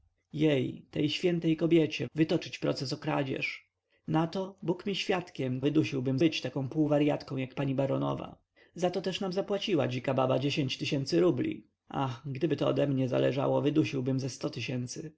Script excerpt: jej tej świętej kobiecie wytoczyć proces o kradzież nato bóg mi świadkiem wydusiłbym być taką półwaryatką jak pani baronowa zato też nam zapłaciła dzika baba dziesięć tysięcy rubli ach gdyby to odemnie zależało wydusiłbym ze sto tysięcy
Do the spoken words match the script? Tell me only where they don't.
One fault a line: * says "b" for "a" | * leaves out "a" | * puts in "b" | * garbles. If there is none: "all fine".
all fine